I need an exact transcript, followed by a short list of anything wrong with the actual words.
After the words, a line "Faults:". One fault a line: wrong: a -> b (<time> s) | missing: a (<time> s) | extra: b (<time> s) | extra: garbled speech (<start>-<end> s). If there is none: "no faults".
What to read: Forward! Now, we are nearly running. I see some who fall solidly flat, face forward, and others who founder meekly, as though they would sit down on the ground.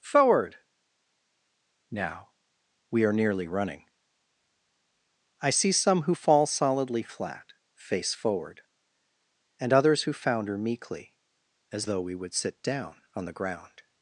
Forward! Now, we are nearly running. I see some who fall solidly flat, face forward, and others who founder meekly, as though we would sit down on the ground.
Faults:
wrong: they -> we (12.0 s)